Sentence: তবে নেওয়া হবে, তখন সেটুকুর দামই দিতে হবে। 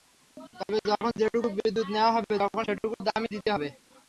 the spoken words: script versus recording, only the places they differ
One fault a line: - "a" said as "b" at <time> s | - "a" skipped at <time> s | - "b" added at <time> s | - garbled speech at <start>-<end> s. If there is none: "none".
- "যখন যেটুকু বিদ্যুৎ" added at 0.9 s